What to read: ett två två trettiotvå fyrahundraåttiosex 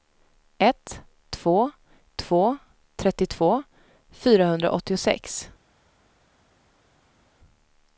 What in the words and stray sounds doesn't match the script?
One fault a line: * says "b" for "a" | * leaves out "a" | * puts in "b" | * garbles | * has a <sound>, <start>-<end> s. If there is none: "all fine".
all fine